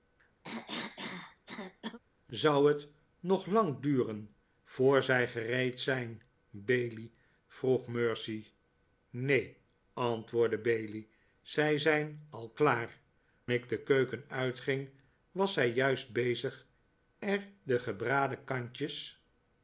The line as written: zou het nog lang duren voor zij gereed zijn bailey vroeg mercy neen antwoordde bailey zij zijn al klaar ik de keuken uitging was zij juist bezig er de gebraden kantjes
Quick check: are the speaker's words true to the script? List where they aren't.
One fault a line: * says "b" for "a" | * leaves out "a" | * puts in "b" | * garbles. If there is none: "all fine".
all fine